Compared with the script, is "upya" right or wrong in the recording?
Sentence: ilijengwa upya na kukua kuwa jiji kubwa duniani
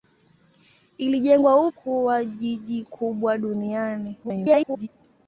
wrong